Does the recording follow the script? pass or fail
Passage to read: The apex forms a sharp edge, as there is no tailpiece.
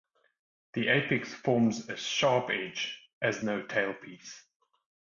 fail